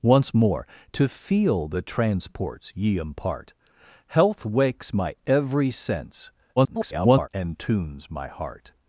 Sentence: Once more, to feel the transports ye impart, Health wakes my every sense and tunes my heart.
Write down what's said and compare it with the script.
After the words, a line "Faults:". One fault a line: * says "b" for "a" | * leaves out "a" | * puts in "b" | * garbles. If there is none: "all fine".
Once more, to feel the transports ye impart, Health wakes my every sense [garbled] and tunes my heart.
Faults:
* garbles